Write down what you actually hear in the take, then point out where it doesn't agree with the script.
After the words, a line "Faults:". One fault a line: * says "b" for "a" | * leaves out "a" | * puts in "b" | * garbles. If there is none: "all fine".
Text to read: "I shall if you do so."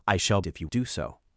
"I shall if you do so."
Faults:
all fine